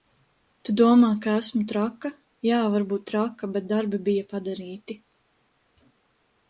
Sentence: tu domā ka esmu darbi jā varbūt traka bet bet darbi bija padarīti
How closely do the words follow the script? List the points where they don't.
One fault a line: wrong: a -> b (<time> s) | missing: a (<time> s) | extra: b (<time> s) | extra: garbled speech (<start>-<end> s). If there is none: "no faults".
wrong: darbi -> traka (1.7 s)
missing: bet (3.7 s)